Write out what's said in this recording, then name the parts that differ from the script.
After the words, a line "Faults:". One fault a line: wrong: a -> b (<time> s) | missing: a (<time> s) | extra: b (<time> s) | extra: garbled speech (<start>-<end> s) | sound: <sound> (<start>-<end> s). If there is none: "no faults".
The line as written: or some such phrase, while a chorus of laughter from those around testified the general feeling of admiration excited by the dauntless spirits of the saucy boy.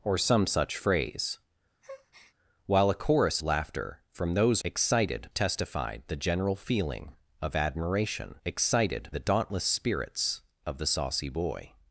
or some such phrase, while a chorus laughter from those excited testified the general feeling of admiration excited the dauntless spirits of the saucy boy.
Faults:
sound: breath (1.8-2.3 s)
missing: of (3.4 s)
wrong: around -> excited (4.6 s)
missing: by (9.1 s)